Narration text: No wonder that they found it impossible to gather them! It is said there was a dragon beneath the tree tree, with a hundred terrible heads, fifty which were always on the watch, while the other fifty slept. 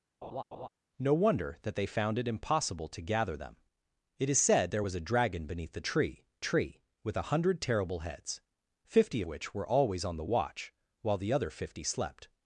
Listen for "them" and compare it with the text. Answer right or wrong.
right